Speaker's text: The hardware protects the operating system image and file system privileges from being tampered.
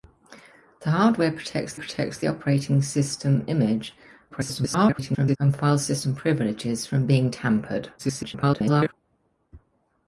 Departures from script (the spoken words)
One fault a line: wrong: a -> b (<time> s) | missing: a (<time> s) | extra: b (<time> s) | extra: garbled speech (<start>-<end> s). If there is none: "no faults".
extra: protects (1.7 s)
extra: garbled speech (4.3-5.4 s)
extra: garbled speech (8.0-8.9 s)